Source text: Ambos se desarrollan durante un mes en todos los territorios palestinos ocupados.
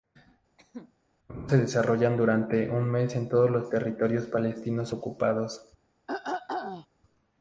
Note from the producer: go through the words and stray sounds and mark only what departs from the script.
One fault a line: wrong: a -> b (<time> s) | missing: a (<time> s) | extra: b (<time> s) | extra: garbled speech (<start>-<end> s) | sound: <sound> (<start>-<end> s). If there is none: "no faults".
sound: cough (0.6-0.9 s)
sound: throat clearing (6.1-6.9 s)